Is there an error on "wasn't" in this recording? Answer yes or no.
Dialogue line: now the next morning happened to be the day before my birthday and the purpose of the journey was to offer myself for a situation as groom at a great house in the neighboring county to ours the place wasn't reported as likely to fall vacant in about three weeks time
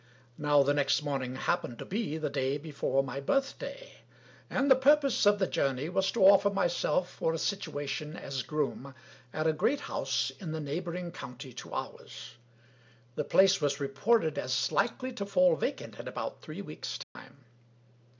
yes